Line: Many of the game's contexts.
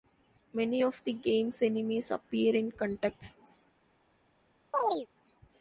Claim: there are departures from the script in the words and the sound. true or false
true